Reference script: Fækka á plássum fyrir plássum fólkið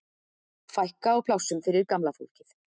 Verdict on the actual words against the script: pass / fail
fail